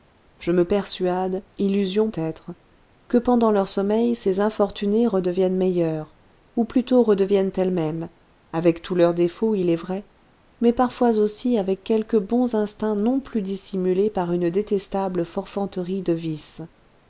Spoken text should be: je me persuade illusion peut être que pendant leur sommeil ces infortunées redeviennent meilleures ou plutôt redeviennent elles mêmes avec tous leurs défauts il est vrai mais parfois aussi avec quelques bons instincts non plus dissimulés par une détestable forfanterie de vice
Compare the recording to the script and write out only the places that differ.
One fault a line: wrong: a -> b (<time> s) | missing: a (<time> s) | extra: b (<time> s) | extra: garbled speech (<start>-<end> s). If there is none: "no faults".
missing: peut (2.1 s)